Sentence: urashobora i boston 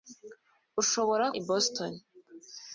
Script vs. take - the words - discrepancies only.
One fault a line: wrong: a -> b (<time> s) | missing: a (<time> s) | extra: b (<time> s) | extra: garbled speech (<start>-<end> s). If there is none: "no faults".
no faults